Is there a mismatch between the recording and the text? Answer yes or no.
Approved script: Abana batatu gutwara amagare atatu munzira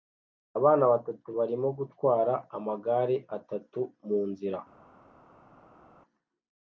yes